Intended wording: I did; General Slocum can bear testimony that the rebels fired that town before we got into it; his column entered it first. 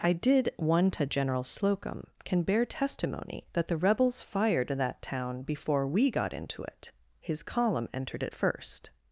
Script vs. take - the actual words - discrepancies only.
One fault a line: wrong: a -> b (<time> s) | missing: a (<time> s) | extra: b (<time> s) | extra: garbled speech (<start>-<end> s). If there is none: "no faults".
extra: one to (0.6 s)